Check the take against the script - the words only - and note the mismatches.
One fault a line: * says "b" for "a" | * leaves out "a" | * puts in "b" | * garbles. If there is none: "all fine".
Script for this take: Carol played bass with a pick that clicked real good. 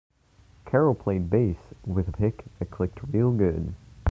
all fine